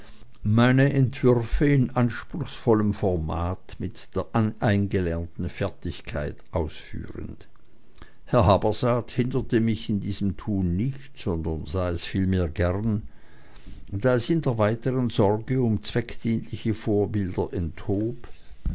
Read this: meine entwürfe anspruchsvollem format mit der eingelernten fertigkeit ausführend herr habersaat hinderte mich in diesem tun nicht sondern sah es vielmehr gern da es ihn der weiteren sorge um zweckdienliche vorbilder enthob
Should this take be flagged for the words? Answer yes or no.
yes